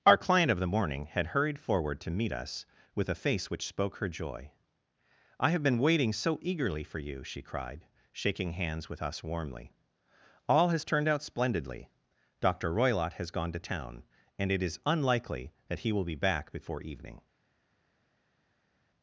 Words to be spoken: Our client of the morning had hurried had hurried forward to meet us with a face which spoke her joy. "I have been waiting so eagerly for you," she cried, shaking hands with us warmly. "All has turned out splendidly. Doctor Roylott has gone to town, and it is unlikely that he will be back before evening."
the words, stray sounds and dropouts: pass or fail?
fail